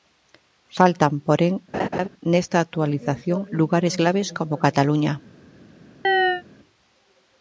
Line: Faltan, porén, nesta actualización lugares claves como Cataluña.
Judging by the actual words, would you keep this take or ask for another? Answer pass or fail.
pass